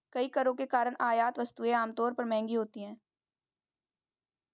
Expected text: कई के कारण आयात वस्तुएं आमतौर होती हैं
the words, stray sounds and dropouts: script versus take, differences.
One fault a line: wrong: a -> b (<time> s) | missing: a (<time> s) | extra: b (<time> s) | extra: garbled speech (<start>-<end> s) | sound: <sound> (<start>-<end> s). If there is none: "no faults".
extra: करों (0.3 s)
extra: पर महंगी (2.1 s)